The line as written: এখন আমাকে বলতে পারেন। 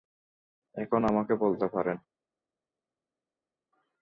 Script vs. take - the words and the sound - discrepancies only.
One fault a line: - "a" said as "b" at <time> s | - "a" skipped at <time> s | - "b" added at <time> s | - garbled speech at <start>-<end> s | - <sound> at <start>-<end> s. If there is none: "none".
none